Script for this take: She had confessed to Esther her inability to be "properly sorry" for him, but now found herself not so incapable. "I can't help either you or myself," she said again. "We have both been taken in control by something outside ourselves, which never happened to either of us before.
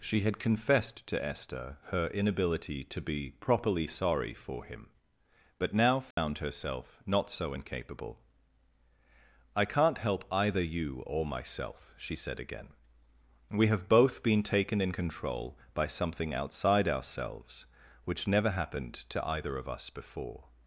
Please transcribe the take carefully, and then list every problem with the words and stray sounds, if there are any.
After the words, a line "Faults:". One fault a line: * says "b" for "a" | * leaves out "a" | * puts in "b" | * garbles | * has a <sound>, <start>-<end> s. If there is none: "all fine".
She had confessed to Esther her inability to be "properly sorry" for him, but now found herself not so incapable. "I can't help either you or myself," she said again. "We have both been taken in control by something outside ourselves, which never happened to either of us before.
Faults:
* has a dropout, 6.1-6.2 s